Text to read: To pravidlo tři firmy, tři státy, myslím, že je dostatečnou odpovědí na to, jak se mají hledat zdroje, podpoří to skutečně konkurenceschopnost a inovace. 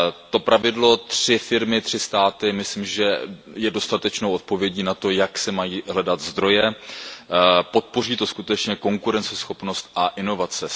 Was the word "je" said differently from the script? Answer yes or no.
no